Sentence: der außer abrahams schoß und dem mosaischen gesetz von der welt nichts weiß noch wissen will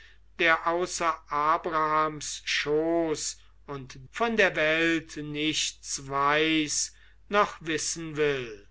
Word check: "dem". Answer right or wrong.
wrong